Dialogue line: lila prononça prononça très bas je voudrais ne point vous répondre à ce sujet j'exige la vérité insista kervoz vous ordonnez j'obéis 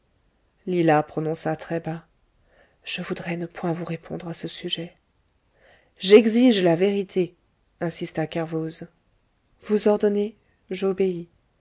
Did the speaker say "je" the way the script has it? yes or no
yes